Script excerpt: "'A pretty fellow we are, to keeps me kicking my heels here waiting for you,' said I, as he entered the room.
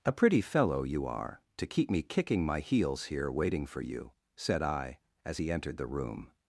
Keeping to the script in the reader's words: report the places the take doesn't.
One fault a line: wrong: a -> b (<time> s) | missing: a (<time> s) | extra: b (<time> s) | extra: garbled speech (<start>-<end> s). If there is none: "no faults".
wrong: we -> you (0.8 s)
wrong: keeps -> keep (1.7 s)